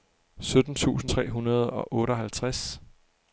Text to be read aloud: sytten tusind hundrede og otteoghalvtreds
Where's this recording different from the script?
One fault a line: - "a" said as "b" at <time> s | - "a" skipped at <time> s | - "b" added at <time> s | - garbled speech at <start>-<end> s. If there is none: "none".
- "tre" added at 1.1 s